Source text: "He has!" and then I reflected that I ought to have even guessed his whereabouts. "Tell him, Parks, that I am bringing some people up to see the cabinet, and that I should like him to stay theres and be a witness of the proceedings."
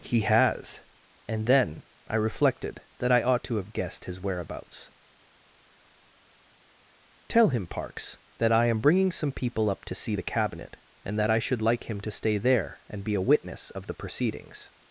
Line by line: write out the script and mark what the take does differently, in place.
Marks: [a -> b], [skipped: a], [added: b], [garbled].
"He has!" and then I reflected that I ought to have [skipped: even] guessed his whereabouts. "Tell him, Parks, that I am bringing some people up to see the cabinet, and that I should like him to stay [theres -> there] and be a witness of the proceedings."